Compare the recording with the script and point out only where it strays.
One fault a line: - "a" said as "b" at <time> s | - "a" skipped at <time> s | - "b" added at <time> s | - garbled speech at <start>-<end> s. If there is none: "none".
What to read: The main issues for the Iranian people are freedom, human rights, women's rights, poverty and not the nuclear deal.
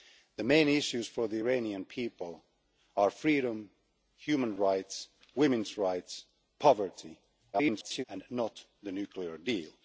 - garbled speech at 7.5-8.0 s